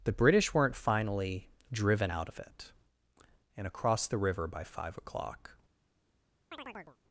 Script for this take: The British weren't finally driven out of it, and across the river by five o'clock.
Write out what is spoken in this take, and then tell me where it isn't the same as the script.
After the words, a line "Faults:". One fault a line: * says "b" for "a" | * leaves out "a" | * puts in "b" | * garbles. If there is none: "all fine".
The British weren't finally driven out of it, and across the river by five o'clock.
Faults:
all fine